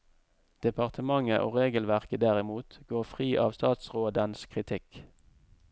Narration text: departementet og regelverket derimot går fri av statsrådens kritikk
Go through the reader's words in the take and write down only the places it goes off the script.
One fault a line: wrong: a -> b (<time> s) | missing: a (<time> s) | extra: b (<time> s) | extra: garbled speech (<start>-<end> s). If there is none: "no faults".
no faults